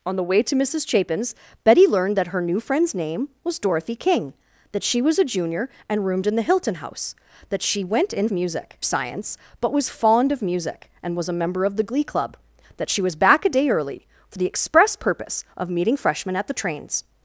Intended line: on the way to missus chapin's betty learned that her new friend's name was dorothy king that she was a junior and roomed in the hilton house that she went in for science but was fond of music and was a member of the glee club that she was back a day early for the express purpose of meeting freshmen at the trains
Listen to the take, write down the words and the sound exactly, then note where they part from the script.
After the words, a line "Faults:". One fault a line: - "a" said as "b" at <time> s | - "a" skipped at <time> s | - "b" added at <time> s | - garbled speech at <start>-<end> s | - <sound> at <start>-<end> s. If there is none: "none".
on the way to missus chapin's betty learned that her new friend's name was dorothy king that she was a junior and roomed in the hilton house that she went in music science but was fond of music and was a member of the glee club that she was back a day early for the express purpose of meeting freshmen at the trains
Faults:
- "for" said as "music" at 8.3 s